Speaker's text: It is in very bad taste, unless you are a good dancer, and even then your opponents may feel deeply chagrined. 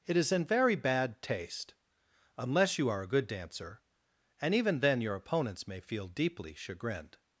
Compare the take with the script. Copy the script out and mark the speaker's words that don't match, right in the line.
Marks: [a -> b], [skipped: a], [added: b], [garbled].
It is in very bad taste, unless you are a good dancer, and even then your opponents may feel deeply chagrined.